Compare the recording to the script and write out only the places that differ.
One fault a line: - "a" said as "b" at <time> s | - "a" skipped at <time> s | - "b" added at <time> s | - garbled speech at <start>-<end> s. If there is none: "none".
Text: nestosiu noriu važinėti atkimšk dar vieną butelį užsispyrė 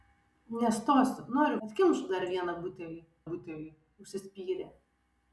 - "važinėti" skipped at 1.6 s
- "butelį" added at 3.3 s